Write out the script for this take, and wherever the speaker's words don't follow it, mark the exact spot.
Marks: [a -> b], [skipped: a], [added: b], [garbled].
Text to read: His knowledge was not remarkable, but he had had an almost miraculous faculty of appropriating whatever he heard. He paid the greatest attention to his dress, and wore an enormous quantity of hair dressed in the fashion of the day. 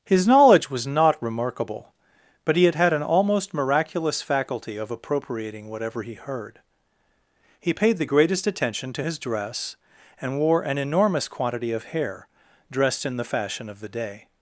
His knowledge was not remarkable, but he had had an almost miraculous faculty of appropriating whatever he heard. He paid the greatest attention to his dress, and wore an enormous quantity of hair dressed in the fashion of the day.